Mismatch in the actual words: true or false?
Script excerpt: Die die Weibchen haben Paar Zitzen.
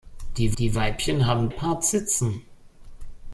false